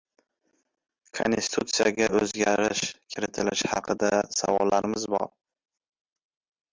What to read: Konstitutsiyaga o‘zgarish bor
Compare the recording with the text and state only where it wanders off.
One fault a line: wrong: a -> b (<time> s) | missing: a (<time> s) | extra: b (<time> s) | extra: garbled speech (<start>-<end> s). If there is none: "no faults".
extra: kiritilishi haqida savollarimiz (3.1 s)